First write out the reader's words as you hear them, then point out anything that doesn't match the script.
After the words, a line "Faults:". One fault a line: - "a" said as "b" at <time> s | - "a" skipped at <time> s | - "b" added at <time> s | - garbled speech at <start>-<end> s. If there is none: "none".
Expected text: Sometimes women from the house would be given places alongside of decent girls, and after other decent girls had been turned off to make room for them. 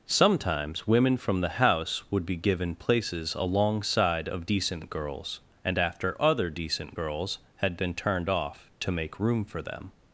Sometimes women from the house would be given places alongside of decent girls, and after other decent girls had been turned off to make room for them.
Faults:
none